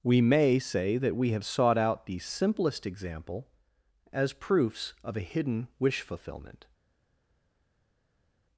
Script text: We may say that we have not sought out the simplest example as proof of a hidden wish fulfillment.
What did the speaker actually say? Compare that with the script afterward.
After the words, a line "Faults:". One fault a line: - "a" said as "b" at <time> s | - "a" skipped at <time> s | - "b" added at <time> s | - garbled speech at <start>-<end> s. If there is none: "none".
We may say that we have sought out the simplest example as proofs of a hidden wish fulfillment.
Faults:
- "not" skipped at 1.4 s
- "proof" said as "proofs" at 4.3 s